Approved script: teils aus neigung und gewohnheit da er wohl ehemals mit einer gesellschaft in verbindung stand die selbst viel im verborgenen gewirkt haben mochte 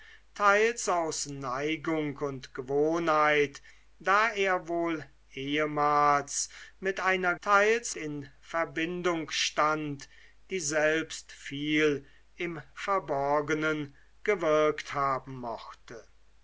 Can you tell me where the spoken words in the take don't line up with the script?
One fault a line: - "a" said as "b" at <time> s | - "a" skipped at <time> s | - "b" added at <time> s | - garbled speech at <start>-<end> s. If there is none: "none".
- "gesellschaft" said as "teils" at 7.4 s